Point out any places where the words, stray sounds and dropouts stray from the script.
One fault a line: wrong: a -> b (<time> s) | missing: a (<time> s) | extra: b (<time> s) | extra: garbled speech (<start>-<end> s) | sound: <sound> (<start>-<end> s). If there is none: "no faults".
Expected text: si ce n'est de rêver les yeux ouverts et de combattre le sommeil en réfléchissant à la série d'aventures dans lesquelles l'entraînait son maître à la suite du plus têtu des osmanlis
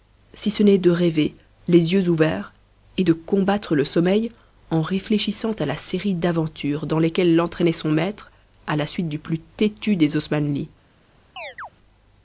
sound: chirp (11.4-11.7 s)